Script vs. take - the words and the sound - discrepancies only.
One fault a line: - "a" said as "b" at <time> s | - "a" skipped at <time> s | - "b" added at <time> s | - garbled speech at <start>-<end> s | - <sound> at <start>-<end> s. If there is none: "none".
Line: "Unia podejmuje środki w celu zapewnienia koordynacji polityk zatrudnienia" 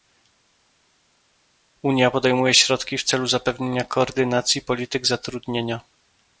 none